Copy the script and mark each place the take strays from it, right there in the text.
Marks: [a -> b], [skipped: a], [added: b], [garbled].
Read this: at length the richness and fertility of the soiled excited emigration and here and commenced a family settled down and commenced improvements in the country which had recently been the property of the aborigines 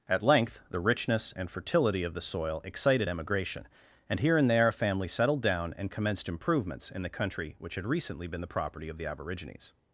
at length the richness and fertility of the [soiled -> soil] excited emigration and here and [commenced -> there] a family settled down and commenced improvements in the country which had recently been the property of the aborigines